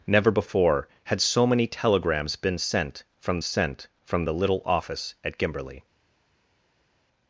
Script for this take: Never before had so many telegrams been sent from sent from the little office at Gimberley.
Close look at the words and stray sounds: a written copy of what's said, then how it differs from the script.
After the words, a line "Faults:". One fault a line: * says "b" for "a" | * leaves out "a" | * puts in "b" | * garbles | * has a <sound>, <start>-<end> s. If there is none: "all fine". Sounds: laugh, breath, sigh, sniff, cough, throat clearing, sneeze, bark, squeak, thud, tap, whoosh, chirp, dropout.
Never before had so many telegrams been sent from sent from the little office at Gimberley.
Faults:
all fine